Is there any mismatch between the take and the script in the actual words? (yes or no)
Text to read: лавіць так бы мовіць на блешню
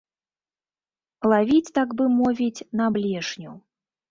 no